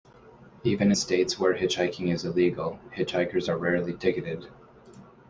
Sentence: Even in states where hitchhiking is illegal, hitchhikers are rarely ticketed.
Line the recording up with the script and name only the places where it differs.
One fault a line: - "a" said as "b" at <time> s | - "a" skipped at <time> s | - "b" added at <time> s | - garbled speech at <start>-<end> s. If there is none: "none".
- "in" skipped at 0.9 s